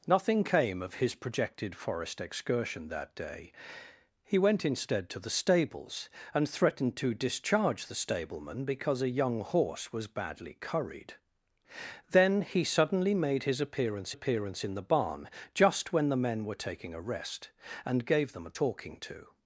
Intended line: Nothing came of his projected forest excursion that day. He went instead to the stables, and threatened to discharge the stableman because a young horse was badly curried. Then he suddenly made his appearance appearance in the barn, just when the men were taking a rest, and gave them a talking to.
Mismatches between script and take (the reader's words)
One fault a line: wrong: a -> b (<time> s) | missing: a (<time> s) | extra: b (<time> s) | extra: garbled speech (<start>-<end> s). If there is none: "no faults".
no faults